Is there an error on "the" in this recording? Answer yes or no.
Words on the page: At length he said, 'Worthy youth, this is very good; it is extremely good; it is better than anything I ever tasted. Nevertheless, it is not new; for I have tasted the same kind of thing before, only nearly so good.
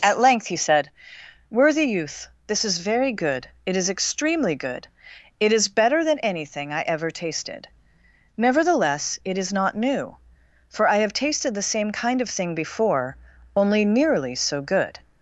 no